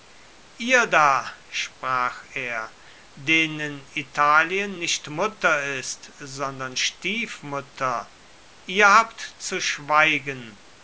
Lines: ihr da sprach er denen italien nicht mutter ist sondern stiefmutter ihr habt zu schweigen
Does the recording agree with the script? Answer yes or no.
yes